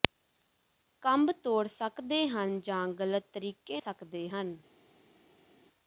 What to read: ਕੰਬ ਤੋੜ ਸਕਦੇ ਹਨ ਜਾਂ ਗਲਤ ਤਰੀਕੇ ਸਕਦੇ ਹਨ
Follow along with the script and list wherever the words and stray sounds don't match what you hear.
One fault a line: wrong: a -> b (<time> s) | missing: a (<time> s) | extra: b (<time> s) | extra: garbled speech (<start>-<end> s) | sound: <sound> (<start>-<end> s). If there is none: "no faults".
no faults